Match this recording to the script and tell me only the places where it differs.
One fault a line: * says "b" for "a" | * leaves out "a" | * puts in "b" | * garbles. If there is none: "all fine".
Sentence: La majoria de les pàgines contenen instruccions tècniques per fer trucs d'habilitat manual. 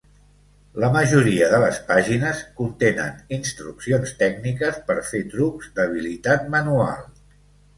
all fine